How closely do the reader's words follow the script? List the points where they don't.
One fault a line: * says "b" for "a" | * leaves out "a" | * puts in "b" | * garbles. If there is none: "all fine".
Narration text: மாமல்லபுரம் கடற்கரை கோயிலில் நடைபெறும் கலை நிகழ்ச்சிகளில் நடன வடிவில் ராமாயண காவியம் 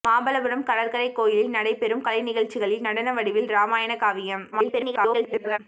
* garbles